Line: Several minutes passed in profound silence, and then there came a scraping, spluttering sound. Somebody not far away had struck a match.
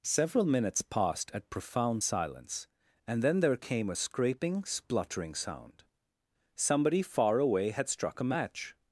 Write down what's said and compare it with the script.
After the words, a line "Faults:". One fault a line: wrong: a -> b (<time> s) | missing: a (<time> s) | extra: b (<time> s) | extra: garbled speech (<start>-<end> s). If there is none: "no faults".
Several minutes passed at profound silence, and then there came a scraping, spluttering sound. Somebody far away had struck a match.
Faults:
wrong: in -> at (1.3 s)
missing: not (7.0 s)